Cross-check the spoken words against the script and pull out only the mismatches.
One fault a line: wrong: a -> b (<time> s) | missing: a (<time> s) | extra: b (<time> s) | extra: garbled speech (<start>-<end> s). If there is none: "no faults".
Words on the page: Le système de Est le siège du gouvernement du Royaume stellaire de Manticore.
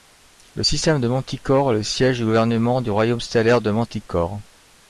extra: Manticore (1.1 s)